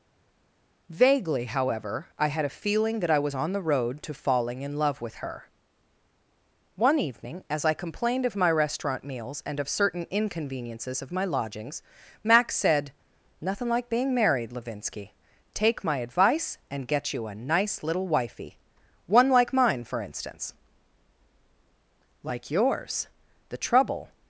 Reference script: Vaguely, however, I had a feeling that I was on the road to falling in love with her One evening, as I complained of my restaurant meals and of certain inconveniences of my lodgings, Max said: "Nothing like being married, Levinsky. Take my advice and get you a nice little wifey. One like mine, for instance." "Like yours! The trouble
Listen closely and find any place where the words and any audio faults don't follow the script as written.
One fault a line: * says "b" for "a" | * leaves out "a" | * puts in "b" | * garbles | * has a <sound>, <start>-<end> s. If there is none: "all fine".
all fine